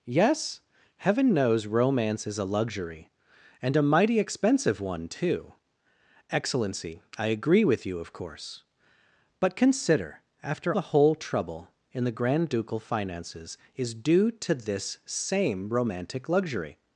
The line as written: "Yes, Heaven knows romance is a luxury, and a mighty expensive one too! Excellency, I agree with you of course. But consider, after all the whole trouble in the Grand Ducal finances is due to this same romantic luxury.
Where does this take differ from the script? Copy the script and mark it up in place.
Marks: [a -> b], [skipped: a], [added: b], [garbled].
"Yes, Heaven knows romance is a luxury, and a mighty expensive one too! Excellency, I agree with you of course. But consider, after [skipped: all] the whole trouble in the Grand Ducal finances is due to this same romantic luxury.